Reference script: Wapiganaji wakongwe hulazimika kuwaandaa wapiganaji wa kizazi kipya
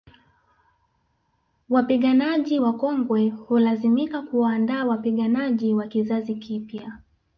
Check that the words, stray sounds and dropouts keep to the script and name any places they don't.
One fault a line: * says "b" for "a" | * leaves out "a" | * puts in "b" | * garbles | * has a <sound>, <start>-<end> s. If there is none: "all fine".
all fine